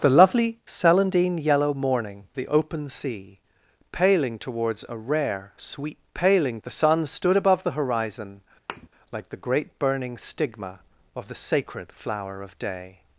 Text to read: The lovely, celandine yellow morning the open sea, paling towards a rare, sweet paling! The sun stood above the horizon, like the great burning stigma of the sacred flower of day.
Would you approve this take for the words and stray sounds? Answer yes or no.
no